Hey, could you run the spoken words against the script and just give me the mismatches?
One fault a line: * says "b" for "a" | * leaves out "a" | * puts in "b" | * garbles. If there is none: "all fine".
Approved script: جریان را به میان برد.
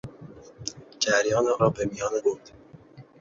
all fine